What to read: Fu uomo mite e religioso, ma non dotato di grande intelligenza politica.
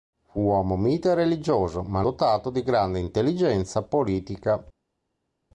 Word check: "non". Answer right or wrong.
wrong